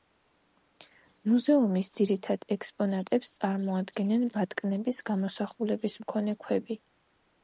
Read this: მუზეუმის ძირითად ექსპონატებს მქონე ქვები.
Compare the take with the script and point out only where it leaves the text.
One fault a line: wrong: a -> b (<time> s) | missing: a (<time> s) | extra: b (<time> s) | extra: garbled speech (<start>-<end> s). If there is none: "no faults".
extra: წარმოადგენენ ბატკნების გამოსახულების (3.4 s)